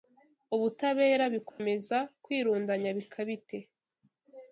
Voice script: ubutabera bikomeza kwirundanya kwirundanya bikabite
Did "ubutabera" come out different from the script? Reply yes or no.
no